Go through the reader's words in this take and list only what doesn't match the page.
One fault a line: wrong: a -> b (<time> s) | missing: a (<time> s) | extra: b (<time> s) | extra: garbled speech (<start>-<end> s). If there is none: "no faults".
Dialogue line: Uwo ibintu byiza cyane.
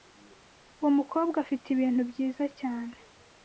extra: mukobwa afite (1.0 s)